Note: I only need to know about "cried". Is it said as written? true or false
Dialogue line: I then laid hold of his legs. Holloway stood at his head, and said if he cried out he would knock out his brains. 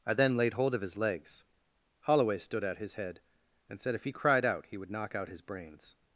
true